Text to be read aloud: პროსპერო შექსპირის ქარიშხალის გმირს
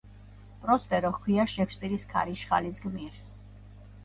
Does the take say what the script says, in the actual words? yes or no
no